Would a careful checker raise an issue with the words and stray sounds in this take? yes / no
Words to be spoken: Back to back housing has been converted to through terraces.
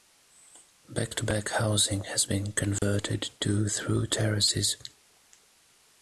yes